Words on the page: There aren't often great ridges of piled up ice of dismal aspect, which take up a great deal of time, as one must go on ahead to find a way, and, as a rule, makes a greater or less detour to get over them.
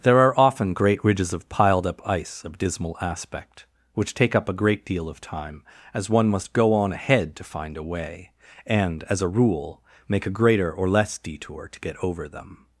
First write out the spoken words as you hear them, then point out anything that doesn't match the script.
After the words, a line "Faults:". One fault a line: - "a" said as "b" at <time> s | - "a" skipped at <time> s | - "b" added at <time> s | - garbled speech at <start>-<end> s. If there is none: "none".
There are often great ridges of piled up ice of dismal aspect, which take up a great deal of time, as one must go on ahead to find a way, and, as a rule, make a greater or less detour to get over them.
Faults:
- "aren't" said as "are" at 0.2 s
- "makes" said as "make" at 10.1 s